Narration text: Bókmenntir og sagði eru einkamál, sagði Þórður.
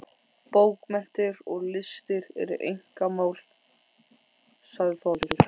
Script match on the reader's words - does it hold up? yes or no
no